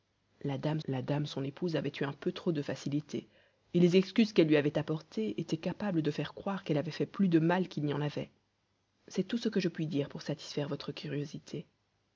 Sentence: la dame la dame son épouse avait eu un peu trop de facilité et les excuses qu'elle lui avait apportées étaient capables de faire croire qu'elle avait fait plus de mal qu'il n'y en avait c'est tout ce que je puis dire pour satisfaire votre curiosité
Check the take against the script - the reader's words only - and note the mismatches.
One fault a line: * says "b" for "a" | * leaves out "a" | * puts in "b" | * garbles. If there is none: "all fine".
all fine